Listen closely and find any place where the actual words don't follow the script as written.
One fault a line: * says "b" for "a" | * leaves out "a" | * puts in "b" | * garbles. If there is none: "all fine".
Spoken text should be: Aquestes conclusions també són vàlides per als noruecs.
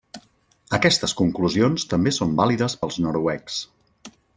* leaves out "per"